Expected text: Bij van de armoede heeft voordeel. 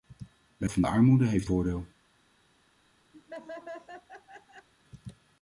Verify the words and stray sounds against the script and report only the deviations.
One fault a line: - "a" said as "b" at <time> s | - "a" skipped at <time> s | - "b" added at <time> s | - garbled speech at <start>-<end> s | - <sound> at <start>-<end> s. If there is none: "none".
- laugh at 3.1-4.7 s